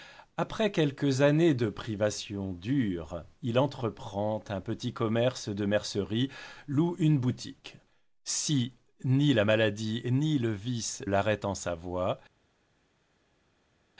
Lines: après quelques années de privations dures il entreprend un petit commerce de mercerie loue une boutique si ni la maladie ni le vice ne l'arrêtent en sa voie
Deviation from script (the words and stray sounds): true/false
true